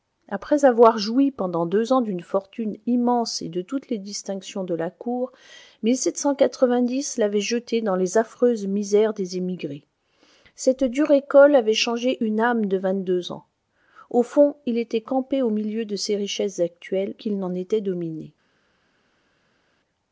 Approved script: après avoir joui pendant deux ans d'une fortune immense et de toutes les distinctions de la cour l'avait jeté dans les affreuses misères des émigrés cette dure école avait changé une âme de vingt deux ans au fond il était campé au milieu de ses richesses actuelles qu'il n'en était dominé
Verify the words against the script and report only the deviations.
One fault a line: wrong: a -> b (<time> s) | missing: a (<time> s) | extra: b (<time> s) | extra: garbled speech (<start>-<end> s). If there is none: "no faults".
no faults